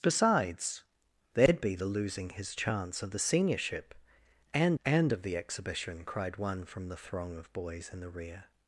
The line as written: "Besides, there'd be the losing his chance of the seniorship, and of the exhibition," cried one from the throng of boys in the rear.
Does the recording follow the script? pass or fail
fail